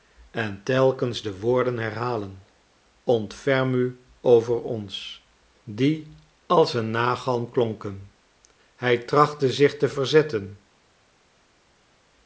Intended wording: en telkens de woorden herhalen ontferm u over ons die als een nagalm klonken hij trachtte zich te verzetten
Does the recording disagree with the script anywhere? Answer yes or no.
no